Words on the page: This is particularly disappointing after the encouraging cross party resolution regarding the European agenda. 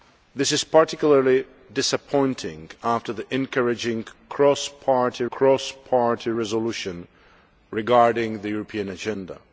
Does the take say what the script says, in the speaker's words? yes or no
no